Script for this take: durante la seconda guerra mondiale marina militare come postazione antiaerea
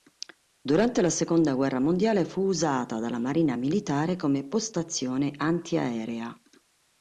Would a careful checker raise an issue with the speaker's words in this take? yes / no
yes